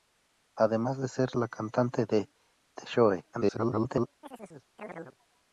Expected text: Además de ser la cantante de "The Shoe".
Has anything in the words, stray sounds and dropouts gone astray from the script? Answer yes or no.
yes